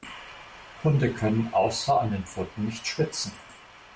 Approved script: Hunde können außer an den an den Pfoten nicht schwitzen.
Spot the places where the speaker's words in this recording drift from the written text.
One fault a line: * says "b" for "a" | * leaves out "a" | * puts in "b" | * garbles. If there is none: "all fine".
* leaves out "an den"